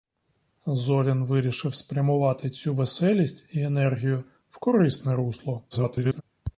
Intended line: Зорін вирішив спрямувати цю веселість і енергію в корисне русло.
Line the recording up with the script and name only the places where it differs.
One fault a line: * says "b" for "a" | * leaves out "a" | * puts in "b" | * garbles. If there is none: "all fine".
* garbles